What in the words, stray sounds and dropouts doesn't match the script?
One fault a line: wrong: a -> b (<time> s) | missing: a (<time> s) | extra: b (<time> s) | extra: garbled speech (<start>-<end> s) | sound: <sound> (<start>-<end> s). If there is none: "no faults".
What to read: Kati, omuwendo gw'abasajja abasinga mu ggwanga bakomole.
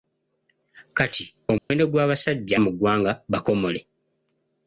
sound: dropout (1.6-1.7 s)
missing: abasinga (2.5 s)